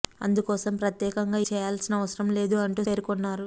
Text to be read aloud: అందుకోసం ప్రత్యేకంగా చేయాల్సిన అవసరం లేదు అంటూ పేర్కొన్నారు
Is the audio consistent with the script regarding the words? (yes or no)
yes